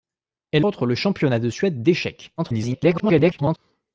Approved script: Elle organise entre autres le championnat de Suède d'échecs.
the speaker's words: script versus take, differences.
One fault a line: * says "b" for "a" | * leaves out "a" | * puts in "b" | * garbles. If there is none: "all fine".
* leaves out "organise entre"
* garbles